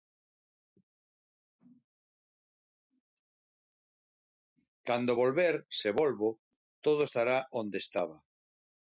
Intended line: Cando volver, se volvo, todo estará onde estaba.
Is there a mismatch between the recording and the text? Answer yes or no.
no